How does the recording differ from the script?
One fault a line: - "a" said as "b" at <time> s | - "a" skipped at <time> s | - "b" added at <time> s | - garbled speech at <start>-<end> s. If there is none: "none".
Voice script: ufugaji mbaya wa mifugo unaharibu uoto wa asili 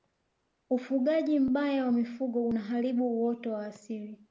none